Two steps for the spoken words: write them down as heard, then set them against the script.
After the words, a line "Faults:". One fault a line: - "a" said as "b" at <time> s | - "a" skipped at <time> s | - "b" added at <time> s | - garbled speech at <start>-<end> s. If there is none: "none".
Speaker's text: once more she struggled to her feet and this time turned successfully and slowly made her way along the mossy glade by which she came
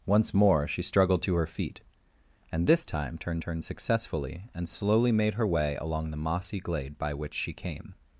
once more she struggled to her feet and this time turned turned successfully and slowly made her way along the mossy glade by which she came
Faults:
- "turned" added at 3.4 s